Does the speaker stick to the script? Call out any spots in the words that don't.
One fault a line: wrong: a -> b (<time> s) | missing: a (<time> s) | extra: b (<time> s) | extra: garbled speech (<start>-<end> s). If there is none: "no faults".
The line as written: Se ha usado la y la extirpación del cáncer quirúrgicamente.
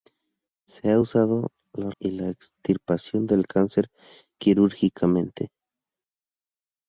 no faults